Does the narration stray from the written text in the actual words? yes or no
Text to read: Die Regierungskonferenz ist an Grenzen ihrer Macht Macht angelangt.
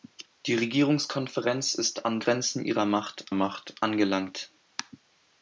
no